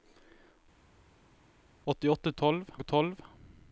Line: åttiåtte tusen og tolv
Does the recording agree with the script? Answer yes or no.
no